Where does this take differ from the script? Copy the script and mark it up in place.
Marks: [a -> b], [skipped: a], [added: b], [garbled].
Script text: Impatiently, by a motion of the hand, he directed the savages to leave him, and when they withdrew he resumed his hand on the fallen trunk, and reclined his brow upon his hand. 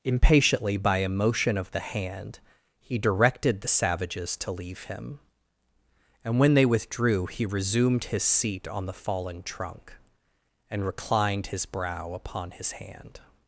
Impatiently, by a motion of the hand, he directed the savages to leave him, and when they withdrew he resumed his [hand -> seat] on the fallen trunk, and reclined his brow upon his hand.